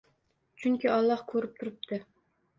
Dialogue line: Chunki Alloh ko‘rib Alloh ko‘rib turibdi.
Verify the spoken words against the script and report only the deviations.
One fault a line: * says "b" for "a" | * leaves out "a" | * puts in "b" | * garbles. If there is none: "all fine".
* leaves out "Alloh ko‘rib"